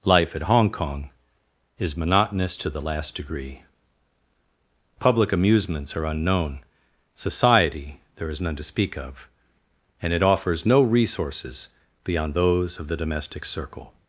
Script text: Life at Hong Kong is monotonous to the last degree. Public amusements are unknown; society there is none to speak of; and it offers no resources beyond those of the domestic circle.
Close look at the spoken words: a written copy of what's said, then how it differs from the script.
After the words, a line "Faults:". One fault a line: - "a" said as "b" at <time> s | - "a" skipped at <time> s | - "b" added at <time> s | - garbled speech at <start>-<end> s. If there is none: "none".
Life at Hong Kong is monotonous to the last degree. Public amusements are unknown; society there is none to speak of; and it offers no resources beyond those of the domestic circle.
Faults:
none